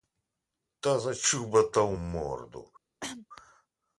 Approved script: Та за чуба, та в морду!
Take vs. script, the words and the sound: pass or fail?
fail